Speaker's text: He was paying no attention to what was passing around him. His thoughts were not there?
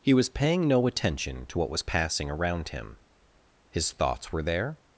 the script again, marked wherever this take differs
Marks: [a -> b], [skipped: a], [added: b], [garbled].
He was paying no attention to what was passing around him. His thoughts were [skipped: not] there?